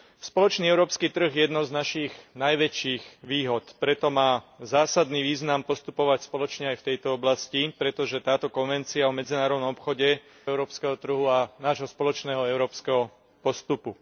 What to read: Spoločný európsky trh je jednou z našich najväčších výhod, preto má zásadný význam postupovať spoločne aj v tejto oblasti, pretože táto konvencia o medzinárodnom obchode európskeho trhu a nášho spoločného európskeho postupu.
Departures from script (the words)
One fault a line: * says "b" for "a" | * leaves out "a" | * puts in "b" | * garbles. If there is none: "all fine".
all fine